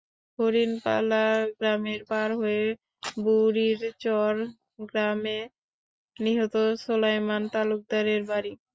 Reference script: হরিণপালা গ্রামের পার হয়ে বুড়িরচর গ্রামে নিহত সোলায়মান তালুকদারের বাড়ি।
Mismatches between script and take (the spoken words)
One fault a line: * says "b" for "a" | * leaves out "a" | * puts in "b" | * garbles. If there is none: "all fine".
all fine